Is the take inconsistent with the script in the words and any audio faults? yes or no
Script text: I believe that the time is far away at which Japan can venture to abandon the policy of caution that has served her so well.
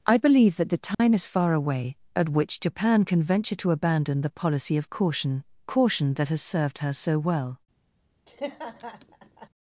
yes